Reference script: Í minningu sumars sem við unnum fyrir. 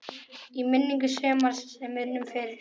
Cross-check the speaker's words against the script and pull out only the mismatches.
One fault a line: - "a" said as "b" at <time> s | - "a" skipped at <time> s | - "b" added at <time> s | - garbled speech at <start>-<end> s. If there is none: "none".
- "við" skipped at 2.0 s